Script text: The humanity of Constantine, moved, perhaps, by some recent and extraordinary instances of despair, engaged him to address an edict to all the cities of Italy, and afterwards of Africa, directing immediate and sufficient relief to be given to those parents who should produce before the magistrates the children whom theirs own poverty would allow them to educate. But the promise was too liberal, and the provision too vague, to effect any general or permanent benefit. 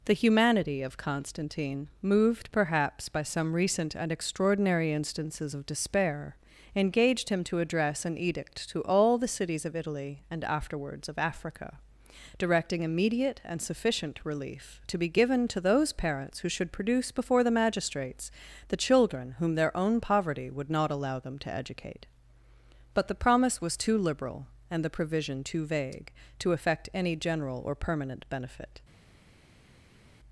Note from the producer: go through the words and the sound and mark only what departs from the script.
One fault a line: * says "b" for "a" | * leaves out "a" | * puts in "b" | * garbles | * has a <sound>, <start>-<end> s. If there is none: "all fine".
* says "their" for "theirs"
* puts in "not"